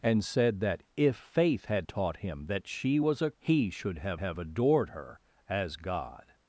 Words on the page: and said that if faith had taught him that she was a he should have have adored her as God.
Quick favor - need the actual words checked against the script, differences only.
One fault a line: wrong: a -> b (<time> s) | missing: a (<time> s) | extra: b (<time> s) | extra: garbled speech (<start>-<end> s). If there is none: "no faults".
no faults